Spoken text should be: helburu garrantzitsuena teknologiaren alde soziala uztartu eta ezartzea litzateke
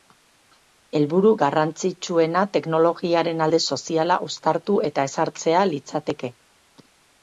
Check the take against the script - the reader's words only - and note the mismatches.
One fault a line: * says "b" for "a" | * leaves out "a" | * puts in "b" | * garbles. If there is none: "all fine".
all fine